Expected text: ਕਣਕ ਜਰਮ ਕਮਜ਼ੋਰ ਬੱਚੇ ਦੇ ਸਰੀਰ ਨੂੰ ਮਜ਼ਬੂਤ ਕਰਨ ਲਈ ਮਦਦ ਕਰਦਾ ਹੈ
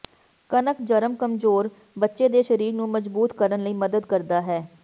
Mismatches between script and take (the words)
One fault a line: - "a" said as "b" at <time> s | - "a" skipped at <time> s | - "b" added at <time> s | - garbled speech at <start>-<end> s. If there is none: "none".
none